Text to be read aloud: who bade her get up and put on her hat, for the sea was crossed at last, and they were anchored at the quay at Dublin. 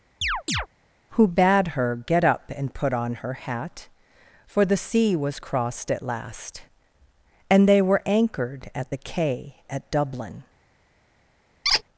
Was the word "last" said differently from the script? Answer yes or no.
no